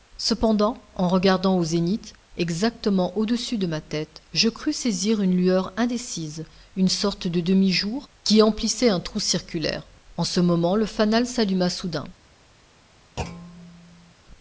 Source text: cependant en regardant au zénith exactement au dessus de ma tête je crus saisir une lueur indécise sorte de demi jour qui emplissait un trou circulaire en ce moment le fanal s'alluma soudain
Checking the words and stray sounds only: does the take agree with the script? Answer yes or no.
no